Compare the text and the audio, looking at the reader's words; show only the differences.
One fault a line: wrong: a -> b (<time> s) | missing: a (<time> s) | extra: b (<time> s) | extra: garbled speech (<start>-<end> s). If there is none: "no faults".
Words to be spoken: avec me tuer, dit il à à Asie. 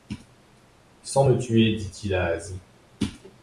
wrong: avec -> sans (1.0 s)
missing: à (2.3 s)